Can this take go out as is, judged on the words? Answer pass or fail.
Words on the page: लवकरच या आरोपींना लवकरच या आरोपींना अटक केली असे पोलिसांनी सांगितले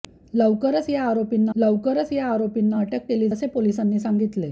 pass